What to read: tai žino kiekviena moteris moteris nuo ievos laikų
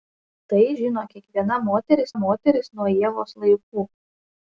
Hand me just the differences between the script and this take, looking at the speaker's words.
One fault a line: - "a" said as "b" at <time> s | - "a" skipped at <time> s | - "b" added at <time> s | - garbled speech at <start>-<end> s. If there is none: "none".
none